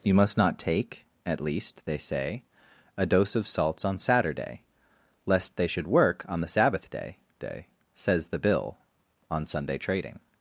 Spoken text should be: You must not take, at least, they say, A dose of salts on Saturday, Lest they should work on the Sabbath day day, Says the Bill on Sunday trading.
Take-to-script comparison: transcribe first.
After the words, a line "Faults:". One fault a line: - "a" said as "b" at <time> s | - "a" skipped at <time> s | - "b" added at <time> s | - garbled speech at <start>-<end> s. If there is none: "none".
You must not take, at least, they say, A dose of salts on Saturday, Lest they should work on the Sabbath day day, Says the Bill on Sunday trading.
Faults:
none